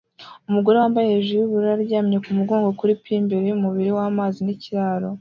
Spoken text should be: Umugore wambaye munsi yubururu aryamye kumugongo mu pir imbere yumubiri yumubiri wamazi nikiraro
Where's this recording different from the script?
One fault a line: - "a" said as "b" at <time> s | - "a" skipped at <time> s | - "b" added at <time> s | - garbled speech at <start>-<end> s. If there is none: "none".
- "munsi" said as "hejuru" at 1.1 s
- "mu" said as "kuri" at 2.8 s
- "yumubiri" skipped at 3.9 s